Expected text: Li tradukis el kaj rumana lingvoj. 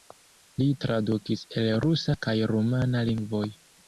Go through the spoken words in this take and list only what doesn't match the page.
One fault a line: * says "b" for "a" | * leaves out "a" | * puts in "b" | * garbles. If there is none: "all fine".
* puts in "rusa"